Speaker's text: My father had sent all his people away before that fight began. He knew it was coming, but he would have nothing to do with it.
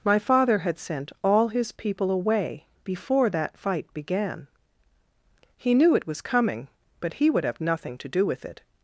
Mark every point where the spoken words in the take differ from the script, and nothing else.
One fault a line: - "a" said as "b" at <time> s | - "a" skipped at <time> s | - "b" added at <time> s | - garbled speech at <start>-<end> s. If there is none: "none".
none